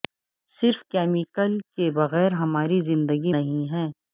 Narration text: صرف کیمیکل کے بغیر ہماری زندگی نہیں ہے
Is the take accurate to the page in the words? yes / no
yes